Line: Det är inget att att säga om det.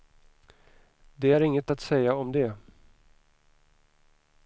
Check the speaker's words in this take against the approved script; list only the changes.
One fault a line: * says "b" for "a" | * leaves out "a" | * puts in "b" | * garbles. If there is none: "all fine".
* leaves out "att"